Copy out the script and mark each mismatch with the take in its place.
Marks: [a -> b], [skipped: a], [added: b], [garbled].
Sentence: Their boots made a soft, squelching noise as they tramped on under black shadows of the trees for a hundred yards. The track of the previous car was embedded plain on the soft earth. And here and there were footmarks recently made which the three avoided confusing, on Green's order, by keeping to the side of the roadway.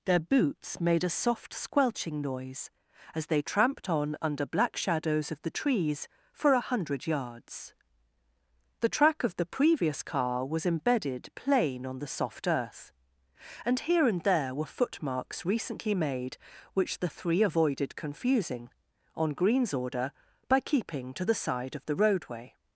Their boots made a soft, squelching noise as they tramped on under black shadows of the trees for a hundred yards. The track of the previous car was embedded plain on the soft earth. And here and there were footmarks recently made which the three avoided confusing, on Green's order, by keeping to the side of the roadway.